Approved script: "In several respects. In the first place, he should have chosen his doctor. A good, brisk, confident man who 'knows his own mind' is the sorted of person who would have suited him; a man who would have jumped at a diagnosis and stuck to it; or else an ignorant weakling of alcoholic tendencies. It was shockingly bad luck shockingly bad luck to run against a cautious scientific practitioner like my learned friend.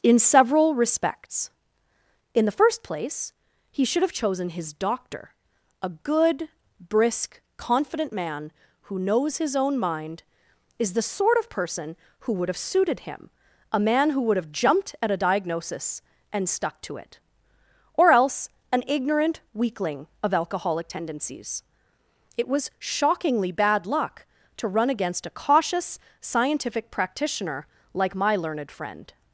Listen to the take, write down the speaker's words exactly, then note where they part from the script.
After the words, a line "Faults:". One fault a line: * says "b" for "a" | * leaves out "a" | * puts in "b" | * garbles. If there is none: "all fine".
"In several respects. In the first place, he should have chosen his doctor. A good, brisk, confident man who 'knows his own mind' is the sort of person who would have suited him; a man who would have jumped at a diagnosis and stuck to it; or else an ignorant weakling of alcoholic tendencies. It was shockingly bad luck to run against a cautious scientific practitioner like my learned friend.
Faults:
* says "sort" for "sorted"
* leaves out "shockingly bad luck"